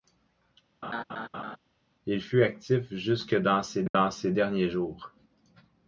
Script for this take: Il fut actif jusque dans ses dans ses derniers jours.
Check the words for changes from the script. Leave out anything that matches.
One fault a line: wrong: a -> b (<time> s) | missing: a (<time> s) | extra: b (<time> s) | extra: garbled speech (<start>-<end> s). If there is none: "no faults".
no faults